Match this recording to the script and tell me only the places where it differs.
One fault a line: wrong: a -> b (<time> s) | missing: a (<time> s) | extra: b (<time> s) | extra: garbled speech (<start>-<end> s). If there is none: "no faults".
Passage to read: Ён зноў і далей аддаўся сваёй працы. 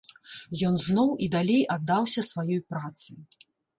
no faults